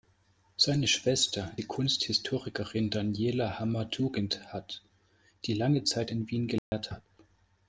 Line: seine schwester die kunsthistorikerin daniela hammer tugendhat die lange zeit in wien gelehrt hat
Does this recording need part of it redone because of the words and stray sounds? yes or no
yes